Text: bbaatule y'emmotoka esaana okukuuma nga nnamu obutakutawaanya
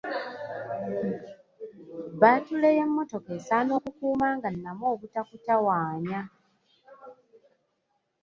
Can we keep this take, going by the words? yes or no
yes